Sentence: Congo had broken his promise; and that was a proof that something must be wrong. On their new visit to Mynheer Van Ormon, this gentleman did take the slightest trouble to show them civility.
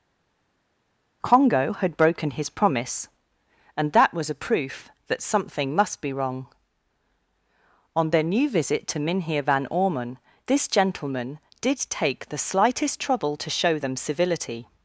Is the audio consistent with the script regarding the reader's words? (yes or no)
yes